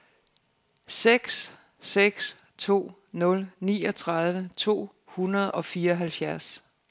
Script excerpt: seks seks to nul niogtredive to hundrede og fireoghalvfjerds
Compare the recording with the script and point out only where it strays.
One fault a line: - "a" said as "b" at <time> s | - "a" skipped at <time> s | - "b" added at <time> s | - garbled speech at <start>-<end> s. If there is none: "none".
none